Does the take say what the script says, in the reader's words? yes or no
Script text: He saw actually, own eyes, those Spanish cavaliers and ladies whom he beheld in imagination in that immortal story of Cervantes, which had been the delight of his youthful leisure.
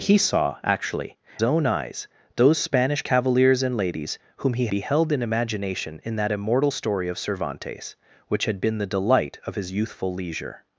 yes